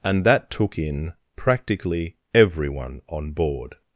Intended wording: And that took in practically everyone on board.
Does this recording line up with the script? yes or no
yes